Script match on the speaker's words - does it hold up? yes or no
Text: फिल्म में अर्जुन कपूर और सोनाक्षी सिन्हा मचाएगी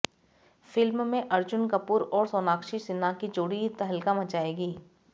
no